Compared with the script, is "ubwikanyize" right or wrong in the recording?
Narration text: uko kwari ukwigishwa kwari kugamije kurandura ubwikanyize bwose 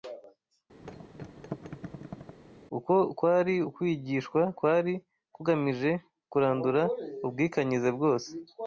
right